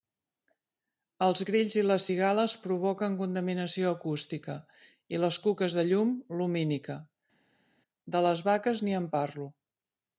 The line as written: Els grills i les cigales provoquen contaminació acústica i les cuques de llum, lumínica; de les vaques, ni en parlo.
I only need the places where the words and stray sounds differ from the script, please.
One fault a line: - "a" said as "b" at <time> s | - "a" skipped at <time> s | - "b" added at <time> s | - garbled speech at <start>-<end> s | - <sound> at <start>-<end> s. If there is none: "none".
none